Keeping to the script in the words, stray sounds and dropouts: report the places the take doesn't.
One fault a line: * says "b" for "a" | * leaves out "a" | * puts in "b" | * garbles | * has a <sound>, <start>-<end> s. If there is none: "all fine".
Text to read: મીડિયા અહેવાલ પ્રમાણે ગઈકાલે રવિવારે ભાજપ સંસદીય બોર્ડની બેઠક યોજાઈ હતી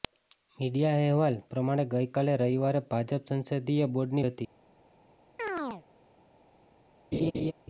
* leaves out "બેઠક યોજાઈ"
* has a chirp, 5.4-5.8 s
* has a laugh, 7.1-7.5 s